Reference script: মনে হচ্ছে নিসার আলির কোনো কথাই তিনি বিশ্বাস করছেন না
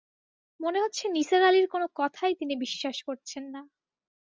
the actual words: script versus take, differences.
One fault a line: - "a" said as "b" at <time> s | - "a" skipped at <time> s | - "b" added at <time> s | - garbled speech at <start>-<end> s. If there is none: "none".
none